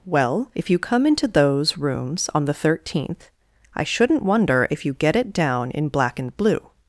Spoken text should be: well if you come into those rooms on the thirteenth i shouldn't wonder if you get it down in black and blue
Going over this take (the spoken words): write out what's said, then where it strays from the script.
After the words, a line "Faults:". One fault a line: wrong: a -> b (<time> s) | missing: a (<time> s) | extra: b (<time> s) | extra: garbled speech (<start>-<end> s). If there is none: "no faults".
well if you come into those rooms on the thirteenth i shouldn't wonder if you get it down in black and blue
Faults:
no faults